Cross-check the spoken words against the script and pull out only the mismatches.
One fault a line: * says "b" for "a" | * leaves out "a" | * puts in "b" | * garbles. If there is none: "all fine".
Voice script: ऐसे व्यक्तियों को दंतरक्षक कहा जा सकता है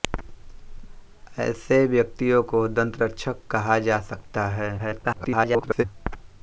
* garbles